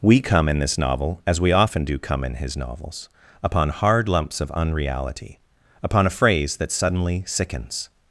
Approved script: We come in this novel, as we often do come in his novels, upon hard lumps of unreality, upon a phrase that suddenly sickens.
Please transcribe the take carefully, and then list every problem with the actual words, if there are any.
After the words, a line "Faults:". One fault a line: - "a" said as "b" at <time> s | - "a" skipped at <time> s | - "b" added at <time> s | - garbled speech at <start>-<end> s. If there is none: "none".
We come in this novel, as we often do come in his novels, upon hard lumps of unreality, upon a phrase that suddenly sickens.
Faults:
none